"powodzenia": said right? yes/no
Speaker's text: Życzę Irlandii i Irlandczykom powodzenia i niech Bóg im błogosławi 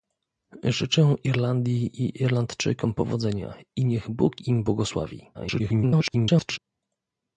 yes